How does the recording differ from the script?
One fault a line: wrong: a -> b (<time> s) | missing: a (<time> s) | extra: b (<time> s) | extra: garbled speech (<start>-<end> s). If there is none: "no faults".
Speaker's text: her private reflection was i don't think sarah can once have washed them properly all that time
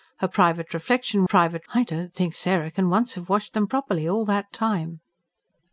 wrong: was -> private (1.2 s)